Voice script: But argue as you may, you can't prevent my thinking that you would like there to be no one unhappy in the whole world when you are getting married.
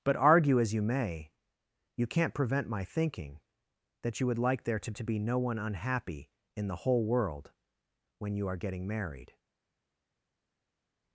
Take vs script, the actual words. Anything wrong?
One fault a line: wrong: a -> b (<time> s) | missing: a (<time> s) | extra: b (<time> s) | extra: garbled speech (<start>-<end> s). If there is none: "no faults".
extra: to (4.9 s)